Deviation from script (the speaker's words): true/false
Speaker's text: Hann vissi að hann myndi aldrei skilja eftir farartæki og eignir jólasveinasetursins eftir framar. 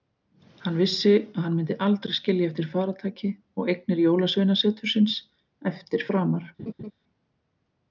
false